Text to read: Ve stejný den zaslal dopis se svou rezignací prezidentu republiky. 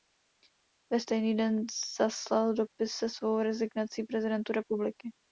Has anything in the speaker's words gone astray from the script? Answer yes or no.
no